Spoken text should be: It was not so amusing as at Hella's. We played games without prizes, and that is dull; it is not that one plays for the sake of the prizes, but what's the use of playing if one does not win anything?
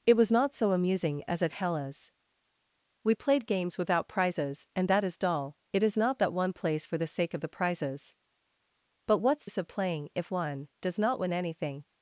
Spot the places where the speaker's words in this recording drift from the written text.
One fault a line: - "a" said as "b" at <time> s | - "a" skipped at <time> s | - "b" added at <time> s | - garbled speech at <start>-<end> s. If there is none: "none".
- "the" skipped at 9.4 s